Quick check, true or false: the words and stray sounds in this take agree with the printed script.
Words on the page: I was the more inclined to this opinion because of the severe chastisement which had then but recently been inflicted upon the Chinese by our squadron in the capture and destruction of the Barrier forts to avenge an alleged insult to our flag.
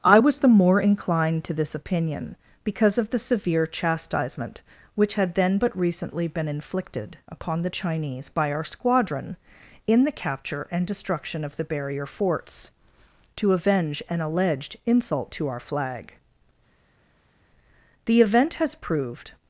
false